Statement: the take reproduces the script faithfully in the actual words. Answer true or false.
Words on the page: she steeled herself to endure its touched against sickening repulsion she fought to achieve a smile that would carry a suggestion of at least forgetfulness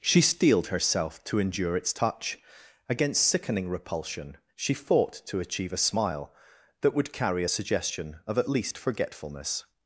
false